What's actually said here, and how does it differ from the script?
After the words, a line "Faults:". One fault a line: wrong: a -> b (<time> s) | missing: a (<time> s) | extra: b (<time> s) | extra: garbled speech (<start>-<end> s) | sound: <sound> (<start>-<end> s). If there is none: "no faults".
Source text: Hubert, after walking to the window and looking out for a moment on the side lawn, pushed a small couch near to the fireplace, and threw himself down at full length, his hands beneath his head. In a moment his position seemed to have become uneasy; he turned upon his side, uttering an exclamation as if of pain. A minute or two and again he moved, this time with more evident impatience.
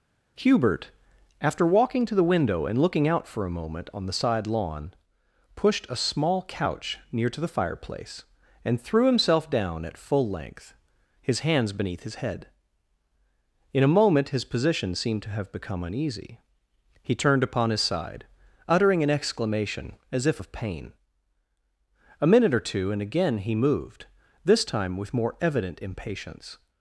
Hubert, after walking to the window and looking out for a moment on the side lawn, pushed a small couch near to the fireplace, and threw himself down at full length, his hands beneath his head. In a moment his position seemed to have become uneasy; he turned upon his side, uttering an exclamation as if of pain. A minute or two and again he moved, this time with more evident impatience.
Faults:
no faults